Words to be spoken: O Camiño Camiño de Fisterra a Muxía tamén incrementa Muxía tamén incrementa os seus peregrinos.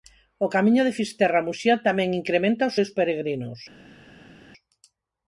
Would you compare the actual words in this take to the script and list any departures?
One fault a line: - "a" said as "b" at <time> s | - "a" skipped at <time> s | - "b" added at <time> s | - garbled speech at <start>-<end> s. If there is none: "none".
- "Camiño" skipped at 0.8 s
- "Muxía tamén incrementa" skipped at 2.7 s